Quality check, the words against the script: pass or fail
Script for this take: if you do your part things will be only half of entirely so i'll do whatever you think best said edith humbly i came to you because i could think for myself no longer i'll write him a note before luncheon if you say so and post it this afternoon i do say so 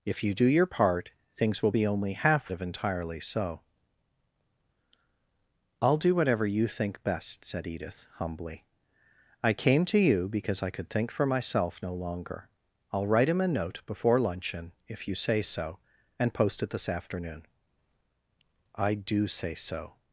pass